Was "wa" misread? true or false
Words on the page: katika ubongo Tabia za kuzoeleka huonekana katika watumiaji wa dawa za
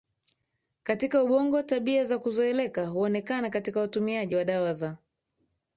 false